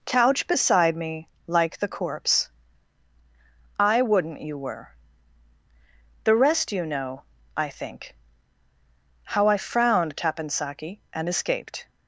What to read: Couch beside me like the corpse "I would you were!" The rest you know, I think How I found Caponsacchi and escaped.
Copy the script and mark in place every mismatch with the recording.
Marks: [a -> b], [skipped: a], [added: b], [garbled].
Couch beside me like the corpse "I [would -> wouldn't] you were!" The rest you know, I think How I [found -> frowned] Caponsacchi and escaped.